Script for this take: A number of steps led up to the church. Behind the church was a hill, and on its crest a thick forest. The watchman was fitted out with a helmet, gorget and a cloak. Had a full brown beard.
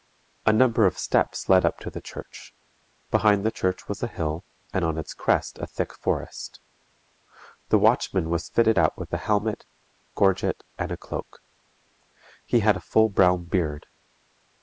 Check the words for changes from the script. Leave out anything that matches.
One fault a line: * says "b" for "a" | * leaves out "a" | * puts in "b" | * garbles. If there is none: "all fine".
* puts in "He"